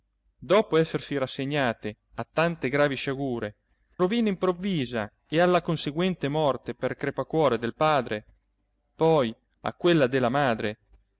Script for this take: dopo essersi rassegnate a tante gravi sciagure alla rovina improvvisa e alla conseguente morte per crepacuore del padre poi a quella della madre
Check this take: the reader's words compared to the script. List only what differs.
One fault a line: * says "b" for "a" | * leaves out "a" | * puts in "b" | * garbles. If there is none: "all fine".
* leaves out "alla"